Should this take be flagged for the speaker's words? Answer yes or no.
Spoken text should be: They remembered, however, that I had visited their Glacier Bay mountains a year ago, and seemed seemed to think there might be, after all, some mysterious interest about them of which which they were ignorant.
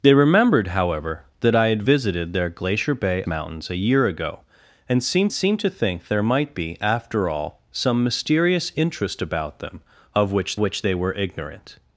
no